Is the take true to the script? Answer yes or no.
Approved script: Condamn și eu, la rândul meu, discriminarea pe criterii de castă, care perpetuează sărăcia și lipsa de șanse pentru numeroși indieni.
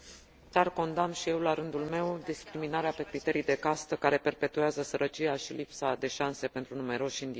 yes